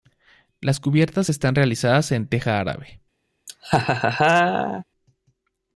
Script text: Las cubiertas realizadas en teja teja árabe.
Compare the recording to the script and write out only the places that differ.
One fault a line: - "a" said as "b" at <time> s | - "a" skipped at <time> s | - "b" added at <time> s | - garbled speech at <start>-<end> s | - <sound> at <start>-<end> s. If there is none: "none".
- "están" added at 1.3 s
- "teja" skipped at 2.6 s
- laugh at 3.5-4.8 s